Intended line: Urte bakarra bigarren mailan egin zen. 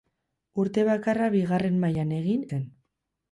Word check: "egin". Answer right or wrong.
right